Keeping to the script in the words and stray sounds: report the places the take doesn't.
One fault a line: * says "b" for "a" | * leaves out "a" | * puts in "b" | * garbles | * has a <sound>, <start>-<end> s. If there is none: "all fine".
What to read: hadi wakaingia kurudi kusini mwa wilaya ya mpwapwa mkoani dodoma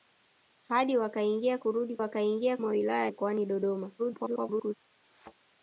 * says "wakaingia" for "kusini"
* leaves out "ya mpwapwa"
* garbles
* has a thud, 5.0-5.3 s